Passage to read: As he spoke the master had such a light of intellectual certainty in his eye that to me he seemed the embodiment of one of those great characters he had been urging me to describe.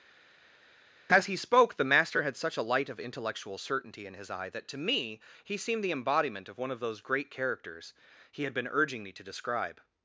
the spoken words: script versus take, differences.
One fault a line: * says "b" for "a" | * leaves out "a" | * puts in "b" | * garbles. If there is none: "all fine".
all fine